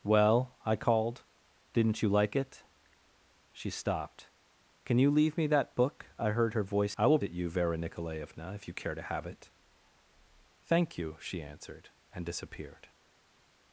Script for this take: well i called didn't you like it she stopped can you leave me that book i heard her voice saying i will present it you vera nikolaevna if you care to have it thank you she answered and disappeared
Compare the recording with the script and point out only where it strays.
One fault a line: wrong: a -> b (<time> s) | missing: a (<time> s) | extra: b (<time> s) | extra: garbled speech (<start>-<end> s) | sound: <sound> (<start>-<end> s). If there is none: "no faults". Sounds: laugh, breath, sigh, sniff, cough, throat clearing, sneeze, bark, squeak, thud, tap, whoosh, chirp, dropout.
missing: saying (6.9 s)
missing: present (7.2 s)